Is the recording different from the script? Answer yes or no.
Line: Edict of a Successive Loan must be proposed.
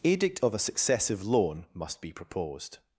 no